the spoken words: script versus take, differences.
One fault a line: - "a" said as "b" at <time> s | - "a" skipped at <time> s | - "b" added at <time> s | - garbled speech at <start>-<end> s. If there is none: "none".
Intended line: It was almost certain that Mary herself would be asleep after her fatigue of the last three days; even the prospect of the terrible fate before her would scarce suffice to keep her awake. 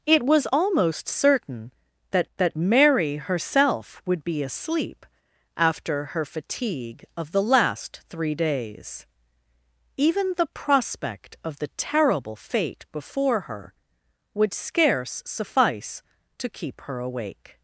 - "that" added at 2.4 s